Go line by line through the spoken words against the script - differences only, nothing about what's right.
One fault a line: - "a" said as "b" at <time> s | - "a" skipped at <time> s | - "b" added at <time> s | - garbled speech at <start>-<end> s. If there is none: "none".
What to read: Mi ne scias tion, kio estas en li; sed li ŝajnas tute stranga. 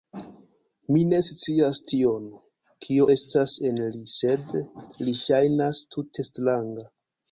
none